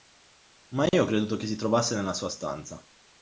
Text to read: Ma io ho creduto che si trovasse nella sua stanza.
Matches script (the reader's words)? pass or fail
pass